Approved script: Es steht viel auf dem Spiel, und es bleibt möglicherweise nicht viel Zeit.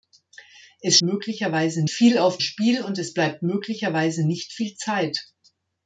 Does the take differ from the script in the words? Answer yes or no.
yes